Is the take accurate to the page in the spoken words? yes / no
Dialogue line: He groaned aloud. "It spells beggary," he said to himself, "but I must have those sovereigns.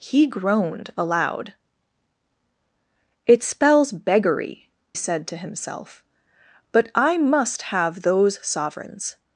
no